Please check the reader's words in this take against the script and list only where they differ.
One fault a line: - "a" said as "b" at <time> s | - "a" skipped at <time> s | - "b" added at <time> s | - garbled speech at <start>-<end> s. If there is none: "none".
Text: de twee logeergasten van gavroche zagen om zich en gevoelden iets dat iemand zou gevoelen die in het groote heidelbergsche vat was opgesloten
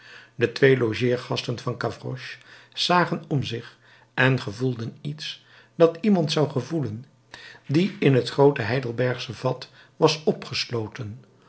none